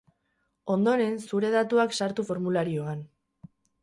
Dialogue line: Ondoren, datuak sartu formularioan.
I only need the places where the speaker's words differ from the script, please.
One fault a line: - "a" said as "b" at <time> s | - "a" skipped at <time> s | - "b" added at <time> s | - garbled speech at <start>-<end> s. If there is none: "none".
- "zure" added at 1.3 s